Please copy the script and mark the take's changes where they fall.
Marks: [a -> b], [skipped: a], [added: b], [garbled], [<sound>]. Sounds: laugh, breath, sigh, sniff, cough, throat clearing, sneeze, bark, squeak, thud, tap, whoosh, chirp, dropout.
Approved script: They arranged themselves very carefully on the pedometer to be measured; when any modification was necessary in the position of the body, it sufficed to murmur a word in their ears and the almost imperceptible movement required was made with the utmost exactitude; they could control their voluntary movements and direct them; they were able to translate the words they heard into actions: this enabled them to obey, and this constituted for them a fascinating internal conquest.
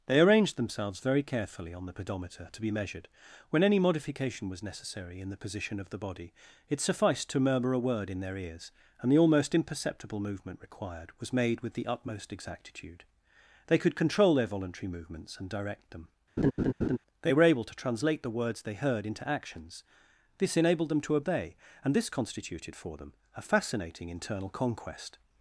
They arranged themselves very carefully on the pedometer to be measured; when any modification was necessary in the position of the body, it sufficed to murmur a word in their ears and the almost imperceptible movement required was made with the utmost exactitude; they could control their voluntary movements and direct them; [laugh] they were able to translate the words they heard into actions: this enabled them to obey, and this constituted for them a fascinating internal conquest.